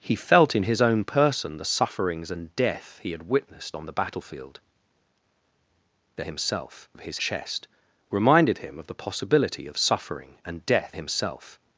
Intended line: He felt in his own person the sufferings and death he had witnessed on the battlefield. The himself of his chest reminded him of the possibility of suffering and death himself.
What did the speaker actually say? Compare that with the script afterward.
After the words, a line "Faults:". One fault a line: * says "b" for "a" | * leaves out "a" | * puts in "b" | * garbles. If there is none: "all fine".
He felt in his own person the sufferings and death he had witnessed on the battlefield. The himself of his chest reminded him of the possibility of suffering and death himself.
Faults:
all fine